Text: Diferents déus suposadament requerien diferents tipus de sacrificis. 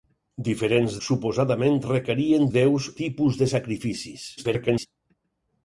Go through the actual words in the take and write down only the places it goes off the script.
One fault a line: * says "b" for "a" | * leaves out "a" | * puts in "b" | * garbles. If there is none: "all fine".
* leaves out "déus"
* says "déus" for "diferents"
* garbles